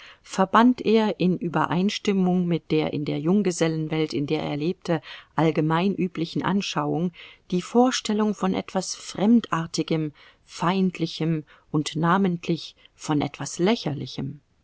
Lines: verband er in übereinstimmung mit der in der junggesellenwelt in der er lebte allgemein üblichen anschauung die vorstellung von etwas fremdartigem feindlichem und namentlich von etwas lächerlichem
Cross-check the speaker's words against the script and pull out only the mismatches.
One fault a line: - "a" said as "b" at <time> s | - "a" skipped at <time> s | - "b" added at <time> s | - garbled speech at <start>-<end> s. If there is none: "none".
none